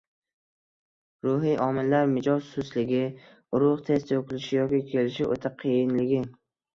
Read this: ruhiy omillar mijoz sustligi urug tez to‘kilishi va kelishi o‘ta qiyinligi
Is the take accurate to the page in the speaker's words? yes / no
no